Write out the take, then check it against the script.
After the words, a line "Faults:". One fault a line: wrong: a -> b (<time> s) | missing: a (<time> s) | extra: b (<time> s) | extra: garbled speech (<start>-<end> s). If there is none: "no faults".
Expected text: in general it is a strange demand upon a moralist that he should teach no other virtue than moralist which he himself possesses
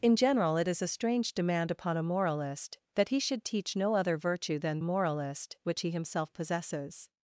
in general it is a strange demand upon a moralist that he should teach no other virtue than moralist which he himself possesses
Faults:
no faults